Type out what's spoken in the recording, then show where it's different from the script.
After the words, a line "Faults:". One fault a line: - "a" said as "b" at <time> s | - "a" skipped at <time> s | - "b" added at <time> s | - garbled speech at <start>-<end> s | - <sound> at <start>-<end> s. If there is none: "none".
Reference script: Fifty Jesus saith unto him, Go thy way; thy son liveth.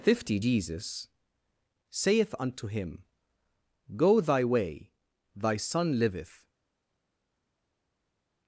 Fifty Jesus saith unto him, Go thy way; thy son liveth.
Faults:
none